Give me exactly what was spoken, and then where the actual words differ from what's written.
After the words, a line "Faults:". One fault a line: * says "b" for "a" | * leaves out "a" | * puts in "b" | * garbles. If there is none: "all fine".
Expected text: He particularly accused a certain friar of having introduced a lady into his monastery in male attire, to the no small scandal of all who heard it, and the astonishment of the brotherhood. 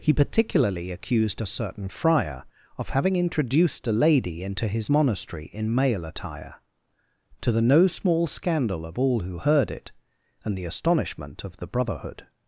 He particularly accused a certain friar of having introduced a lady into his monastery in male attire, to the no small scandal of all who heard it, and the astonishment of the brotherhood.
Faults:
all fine